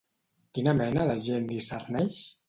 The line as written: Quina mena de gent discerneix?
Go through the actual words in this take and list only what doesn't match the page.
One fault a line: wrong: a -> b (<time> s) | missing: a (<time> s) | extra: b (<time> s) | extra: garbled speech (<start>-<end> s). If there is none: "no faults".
no faults